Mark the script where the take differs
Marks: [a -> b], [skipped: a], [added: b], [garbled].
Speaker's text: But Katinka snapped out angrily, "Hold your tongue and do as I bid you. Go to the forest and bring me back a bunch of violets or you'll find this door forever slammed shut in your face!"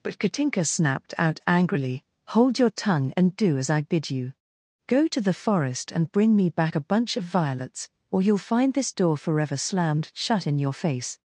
But Katinka snapped out angrily, "Hold your tongue and do as I bid you. Go to the forest and bring me back a bunch of violets or you'll find this door forever slammed shut in your face!"